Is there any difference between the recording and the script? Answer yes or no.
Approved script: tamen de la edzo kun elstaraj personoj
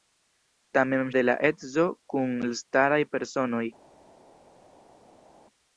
no